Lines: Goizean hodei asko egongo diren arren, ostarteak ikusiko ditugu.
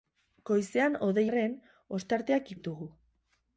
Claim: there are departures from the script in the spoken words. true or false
true